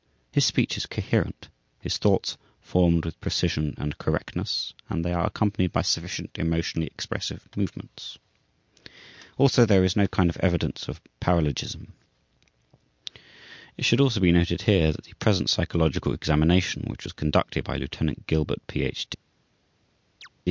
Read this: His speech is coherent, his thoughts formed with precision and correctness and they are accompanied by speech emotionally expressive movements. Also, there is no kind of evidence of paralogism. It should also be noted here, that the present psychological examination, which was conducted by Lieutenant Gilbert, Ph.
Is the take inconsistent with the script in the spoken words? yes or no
yes